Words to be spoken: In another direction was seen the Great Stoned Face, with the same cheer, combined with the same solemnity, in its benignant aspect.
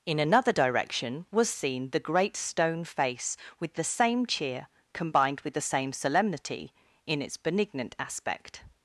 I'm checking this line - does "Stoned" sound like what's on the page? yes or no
no